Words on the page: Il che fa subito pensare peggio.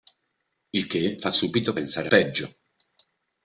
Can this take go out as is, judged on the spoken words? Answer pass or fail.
pass